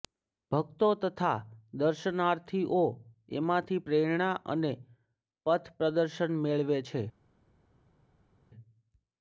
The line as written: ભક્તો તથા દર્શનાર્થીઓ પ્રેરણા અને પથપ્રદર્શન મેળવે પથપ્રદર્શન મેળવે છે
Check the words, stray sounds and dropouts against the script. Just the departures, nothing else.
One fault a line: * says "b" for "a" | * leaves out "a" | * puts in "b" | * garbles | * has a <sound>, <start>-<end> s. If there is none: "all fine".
* puts in "એમાંથી"
* leaves out "પથપ્રદર્શન મેળવે"